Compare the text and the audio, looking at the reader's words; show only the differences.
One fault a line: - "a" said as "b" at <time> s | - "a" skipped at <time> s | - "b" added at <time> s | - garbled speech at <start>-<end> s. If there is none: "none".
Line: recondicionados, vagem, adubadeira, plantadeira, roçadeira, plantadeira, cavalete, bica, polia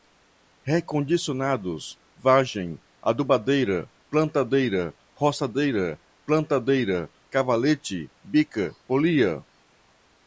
none